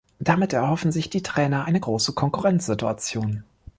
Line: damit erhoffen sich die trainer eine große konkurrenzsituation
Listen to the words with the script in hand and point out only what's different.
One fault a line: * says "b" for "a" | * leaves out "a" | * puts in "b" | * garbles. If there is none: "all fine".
all fine